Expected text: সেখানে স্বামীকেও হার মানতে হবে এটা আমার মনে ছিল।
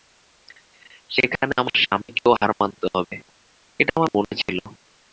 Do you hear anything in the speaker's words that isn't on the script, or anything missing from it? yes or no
yes